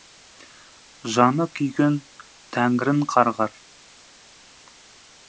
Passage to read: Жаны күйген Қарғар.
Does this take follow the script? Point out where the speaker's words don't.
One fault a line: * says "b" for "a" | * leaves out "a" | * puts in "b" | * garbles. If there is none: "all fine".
* puts in "Тәңірін"